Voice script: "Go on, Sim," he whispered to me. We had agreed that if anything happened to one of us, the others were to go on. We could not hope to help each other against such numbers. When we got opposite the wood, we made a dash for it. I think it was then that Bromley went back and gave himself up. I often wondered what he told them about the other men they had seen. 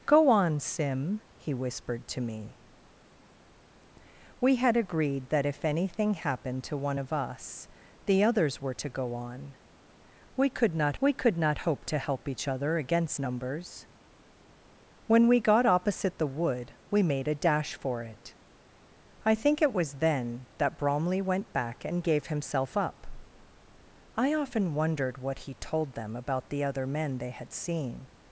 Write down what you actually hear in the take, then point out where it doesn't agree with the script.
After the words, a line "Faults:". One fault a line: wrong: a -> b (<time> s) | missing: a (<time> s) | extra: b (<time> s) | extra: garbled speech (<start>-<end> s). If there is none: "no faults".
"Go on, Sim," he whispered to me. We had agreed that if anything happened to one of us, the others were to go on. We could not we could not hope to help each other against numbers. When we got opposite the wood, we made a dash for it. I think it was then that Bromley went back and gave himself up. I often wondered what he told them about the other men they had seen.
Faults:
extra: we could not (11.0 s)
missing: such (13.2 s)